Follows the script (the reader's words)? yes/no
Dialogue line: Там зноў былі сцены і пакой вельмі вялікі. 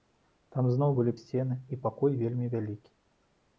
yes